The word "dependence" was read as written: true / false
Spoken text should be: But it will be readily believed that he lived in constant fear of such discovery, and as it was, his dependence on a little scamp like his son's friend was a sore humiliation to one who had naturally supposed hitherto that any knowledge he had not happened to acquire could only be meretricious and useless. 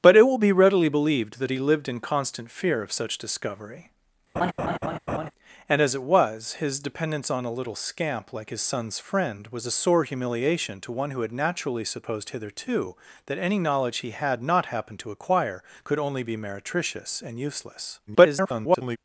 true